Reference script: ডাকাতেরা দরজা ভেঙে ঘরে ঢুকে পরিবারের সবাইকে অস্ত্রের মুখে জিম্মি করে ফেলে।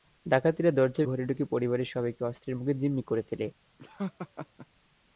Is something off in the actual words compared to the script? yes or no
yes